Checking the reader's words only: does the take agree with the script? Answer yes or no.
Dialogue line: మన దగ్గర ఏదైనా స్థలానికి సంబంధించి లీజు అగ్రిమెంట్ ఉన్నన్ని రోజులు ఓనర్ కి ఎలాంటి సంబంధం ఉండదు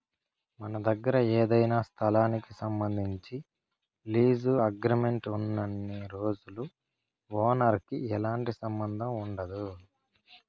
yes